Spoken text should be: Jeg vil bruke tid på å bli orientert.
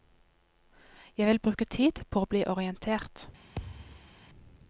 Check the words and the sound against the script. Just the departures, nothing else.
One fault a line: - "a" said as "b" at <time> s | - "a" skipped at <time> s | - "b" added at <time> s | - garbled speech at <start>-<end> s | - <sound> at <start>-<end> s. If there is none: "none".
- thud at 3.5-4.1 s